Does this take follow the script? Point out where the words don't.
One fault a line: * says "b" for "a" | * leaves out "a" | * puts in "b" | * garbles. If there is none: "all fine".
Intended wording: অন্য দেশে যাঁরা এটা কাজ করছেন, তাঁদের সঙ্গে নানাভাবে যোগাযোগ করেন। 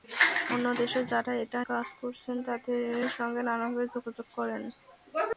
all fine